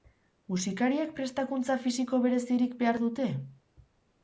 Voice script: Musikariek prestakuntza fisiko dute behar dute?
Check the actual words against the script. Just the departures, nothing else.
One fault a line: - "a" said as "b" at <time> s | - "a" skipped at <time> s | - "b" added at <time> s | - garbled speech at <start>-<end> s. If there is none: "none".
- "dute" said as "berezirik" at 2.2 s